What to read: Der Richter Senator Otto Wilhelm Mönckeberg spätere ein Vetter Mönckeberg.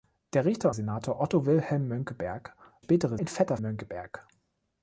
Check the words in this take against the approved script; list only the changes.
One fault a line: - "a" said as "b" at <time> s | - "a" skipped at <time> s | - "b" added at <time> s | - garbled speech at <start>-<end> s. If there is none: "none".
none